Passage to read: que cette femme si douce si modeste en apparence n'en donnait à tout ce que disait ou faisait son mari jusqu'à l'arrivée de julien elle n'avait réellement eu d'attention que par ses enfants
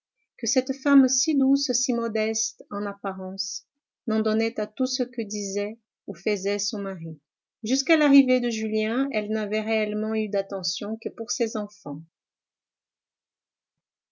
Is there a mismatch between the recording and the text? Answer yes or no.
yes